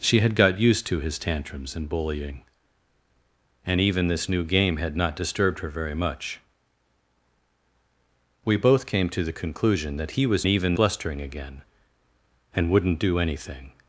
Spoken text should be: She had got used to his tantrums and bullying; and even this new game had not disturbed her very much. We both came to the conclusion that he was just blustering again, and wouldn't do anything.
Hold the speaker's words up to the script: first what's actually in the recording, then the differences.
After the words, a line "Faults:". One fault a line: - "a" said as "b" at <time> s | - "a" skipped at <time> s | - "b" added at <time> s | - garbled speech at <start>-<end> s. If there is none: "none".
She had got used to his tantrums and bullying; and even this new game had not disturbed her very much. We both came to the conclusion that he was even blustering again, and wouldn't do anything.
Faults:
- "just" said as "even" at 10.5 s